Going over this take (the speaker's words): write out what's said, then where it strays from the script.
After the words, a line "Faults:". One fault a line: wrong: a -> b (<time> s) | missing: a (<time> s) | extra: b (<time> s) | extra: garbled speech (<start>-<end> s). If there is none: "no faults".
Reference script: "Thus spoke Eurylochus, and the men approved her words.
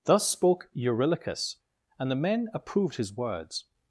"Thus spoke Eurylochus, and the men approved his words.
Faults:
wrong: her -> his (3.0 s)